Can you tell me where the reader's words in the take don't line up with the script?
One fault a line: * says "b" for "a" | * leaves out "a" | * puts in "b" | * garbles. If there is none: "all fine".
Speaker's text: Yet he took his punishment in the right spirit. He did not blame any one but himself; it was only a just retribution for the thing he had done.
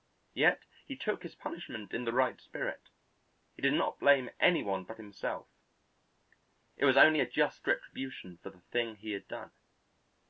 all fine